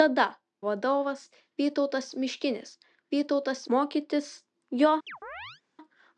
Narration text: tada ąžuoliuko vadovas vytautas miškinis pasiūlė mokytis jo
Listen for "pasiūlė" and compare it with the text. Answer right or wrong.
wrong